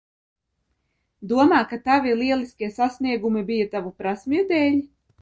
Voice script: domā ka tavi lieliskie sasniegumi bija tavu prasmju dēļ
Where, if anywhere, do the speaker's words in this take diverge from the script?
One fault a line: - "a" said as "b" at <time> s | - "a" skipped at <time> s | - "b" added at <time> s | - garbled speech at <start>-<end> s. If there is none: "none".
none